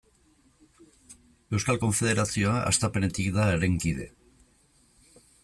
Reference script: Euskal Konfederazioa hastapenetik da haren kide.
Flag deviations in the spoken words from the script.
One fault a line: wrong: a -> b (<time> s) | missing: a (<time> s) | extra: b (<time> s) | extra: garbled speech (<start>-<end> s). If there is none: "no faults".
no faults